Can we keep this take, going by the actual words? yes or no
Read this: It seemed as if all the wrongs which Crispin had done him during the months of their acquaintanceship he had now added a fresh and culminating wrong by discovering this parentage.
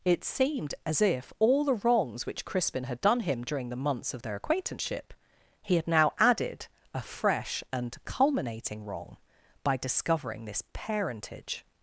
yes